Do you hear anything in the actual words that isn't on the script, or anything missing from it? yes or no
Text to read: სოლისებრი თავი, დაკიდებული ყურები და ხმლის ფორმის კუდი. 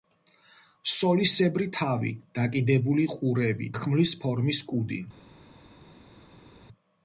yes